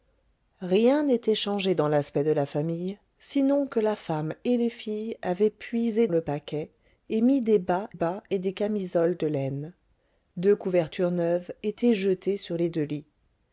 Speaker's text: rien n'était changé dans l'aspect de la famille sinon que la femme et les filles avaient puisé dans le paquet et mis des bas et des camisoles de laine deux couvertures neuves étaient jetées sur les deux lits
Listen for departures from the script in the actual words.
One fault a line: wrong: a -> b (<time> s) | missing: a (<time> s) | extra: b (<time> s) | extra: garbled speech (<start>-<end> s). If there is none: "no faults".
missing: dans (6.1 s)
extra: bas (7.9 s)